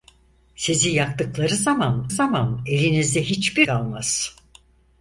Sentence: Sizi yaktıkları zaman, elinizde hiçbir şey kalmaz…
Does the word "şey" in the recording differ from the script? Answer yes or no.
yes